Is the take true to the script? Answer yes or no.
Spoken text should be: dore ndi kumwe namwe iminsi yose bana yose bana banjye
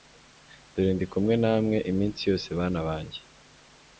no